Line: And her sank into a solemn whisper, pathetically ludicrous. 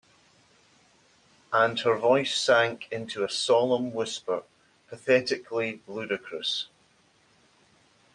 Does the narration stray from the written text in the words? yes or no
yes